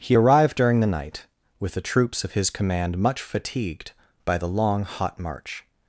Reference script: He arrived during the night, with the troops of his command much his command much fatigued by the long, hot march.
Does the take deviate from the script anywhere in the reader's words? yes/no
yes